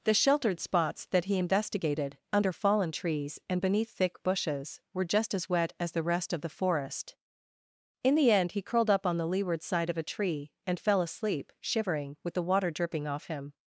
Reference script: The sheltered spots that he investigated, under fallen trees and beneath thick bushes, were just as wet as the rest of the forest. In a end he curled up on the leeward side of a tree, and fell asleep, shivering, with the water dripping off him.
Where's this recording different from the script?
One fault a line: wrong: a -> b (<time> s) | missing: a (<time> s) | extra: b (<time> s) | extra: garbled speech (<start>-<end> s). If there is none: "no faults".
wrong: a -> the (8.2 s)